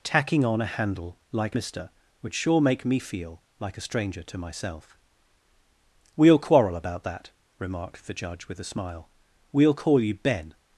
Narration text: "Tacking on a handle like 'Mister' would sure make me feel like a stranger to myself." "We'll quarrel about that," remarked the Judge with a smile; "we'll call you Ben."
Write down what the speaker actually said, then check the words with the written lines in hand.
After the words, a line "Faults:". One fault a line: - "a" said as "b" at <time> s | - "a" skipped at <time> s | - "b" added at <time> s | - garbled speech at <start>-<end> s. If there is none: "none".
"Tacking on a handle like 'Mister' would sure make me feel like a stranger to myself." "We'll quarrel about that," remarked the Judge with a smile; "we'll call you Ben."
Faults:
none